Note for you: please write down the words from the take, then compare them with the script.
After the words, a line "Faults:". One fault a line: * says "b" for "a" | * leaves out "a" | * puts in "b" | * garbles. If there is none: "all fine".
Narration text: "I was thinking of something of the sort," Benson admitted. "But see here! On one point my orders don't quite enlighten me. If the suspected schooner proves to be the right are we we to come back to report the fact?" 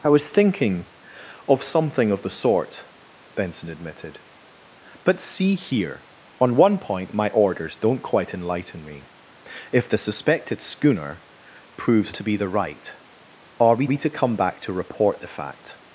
"I was thinking of something of the sort," Benson admitted. "But see here! On one point my orders don't quite enlighten me. If the suspected schooner proves to be the right are we we to come back to report the fact?"
Faults:
all fine